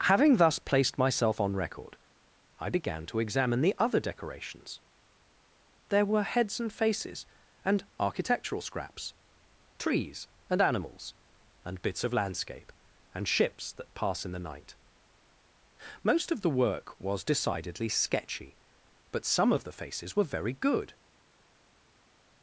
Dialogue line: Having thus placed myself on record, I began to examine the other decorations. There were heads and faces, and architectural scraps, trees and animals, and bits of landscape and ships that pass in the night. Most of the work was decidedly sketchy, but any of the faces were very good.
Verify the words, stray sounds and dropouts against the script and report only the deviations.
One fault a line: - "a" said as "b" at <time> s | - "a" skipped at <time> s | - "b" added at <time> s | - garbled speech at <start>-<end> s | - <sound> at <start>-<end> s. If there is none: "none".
- "any" said as "some" at 19.2 s